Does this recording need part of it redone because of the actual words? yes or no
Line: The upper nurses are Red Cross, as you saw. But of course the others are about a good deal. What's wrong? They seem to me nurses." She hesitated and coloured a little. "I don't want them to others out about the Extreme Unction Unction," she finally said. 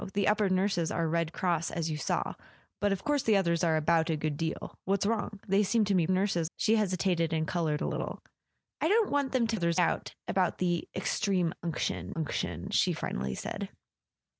no